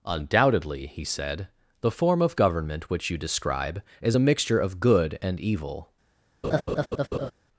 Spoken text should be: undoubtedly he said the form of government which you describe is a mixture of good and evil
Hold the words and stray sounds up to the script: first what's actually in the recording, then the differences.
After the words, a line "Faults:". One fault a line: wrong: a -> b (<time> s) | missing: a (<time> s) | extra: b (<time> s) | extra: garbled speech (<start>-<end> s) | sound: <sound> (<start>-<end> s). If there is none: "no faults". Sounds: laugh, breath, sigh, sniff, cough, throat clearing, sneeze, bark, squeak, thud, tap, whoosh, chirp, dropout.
undoubtedly he said the form of government which you describe is a mixture of good and evil
Faults:
sound: laugh (6.4-7.3 s)